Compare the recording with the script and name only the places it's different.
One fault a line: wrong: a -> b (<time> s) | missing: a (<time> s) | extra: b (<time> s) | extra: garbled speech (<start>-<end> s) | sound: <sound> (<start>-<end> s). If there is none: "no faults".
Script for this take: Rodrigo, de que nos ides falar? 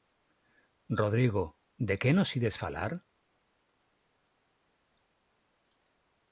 no faults